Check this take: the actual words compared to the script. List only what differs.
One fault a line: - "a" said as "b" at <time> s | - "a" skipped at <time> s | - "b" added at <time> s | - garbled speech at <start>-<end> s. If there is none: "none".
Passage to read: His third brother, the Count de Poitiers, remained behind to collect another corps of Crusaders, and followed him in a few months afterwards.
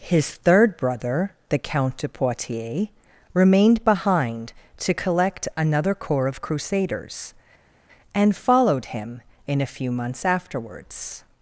none